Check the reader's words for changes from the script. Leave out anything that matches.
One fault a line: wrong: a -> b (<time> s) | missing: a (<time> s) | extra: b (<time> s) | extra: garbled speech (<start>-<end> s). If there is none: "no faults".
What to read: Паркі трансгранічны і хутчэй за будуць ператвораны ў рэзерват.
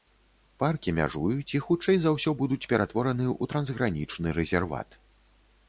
wrong: трансгранічны -> мяжуюць (1.0 s)
extra: ўсё (2.2 s)
extra: трансгранічны (3.5 s)